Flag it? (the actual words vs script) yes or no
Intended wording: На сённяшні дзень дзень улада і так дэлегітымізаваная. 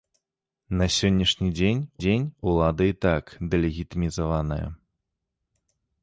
no